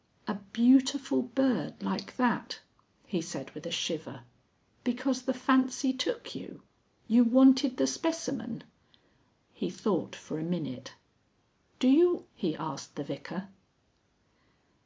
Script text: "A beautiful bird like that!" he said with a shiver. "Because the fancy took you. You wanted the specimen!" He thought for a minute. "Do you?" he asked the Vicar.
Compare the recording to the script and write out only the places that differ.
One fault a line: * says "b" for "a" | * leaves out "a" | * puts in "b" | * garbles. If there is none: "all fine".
all fine